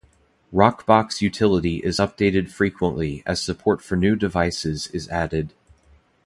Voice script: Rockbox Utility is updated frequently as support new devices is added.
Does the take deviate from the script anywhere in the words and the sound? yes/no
yes